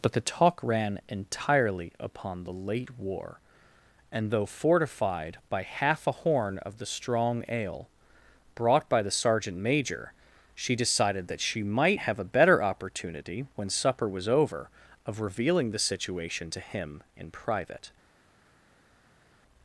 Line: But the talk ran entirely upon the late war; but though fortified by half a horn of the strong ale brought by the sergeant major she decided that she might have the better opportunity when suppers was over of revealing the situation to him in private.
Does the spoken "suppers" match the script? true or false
false